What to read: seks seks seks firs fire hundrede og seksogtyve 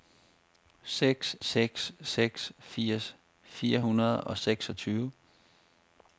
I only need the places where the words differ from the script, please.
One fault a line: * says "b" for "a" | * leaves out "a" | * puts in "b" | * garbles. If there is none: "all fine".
all fine